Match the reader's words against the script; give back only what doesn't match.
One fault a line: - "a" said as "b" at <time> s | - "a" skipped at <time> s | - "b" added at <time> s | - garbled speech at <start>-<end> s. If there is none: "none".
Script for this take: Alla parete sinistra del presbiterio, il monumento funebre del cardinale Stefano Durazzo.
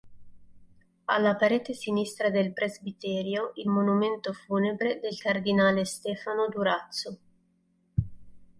none